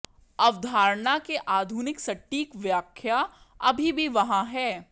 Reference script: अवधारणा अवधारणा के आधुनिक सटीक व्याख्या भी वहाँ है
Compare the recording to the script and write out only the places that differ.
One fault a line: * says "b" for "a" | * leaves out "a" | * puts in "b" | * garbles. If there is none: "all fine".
* leaves out "अवधारणा"
* puts in "अभी"